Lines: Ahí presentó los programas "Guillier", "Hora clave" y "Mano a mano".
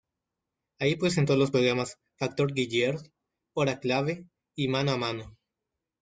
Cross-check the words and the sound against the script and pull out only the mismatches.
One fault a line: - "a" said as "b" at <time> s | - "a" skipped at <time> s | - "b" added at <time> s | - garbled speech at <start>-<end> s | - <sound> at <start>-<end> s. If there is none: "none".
- "Factor" added at 2.2 s